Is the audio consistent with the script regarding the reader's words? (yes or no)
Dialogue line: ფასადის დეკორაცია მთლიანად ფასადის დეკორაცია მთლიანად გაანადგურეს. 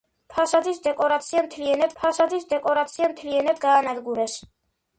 yes